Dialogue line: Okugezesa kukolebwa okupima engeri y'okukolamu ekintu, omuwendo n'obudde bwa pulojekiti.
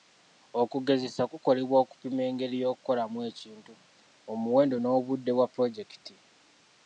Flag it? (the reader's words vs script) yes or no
no